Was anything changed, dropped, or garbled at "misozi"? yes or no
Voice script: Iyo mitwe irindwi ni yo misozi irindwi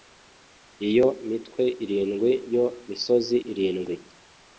no